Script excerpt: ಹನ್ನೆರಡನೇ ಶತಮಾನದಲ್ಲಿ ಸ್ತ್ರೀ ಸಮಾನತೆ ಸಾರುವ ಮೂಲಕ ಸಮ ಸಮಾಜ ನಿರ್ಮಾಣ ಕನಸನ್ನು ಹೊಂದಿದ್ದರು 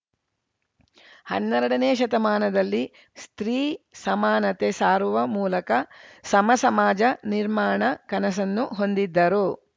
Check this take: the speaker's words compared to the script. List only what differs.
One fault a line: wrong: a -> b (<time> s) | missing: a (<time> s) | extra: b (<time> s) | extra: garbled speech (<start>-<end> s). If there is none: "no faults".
no faults